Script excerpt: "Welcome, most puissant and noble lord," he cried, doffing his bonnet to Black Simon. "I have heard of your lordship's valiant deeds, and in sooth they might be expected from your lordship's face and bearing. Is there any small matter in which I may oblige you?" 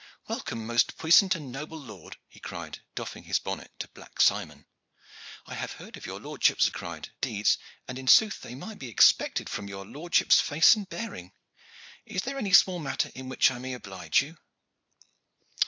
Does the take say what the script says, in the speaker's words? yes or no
no